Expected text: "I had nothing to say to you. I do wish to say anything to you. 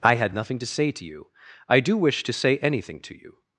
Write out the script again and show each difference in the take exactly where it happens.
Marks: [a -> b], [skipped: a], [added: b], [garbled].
"I had nothing to say to you. I do wish to say anything to you.